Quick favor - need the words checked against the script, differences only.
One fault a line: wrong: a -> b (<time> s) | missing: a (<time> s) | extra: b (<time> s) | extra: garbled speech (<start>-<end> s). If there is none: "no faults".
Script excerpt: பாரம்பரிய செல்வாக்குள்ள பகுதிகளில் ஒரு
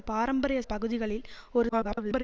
missing: செல்வாக்குள்ள (0.6 s)
extra: garbled speech (1.7-2.2 s)